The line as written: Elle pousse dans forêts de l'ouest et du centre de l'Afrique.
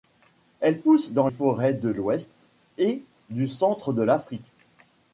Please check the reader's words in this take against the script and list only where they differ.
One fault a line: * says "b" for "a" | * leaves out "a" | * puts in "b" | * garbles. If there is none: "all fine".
all fine